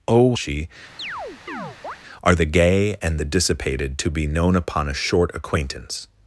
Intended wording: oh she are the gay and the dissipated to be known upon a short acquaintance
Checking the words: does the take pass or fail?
pass